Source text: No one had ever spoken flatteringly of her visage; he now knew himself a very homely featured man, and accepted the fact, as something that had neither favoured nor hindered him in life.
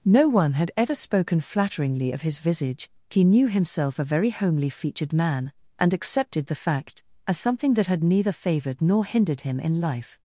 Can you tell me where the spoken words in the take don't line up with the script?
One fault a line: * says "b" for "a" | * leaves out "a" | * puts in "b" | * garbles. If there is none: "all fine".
* says "his" for "her"
* leaves out "now"